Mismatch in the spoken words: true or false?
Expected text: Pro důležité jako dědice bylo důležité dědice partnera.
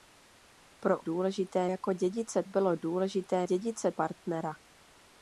false